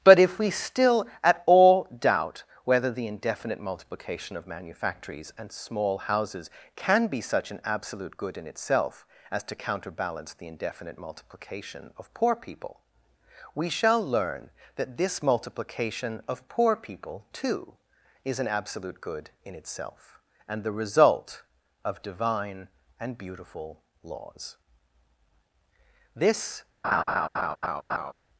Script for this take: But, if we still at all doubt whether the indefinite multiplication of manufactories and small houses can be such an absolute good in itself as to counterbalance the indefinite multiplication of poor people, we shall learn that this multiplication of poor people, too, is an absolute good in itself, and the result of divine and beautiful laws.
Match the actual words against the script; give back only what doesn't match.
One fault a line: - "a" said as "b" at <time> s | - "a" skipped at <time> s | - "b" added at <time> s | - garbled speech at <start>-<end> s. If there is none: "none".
- "This" added at 26.1 s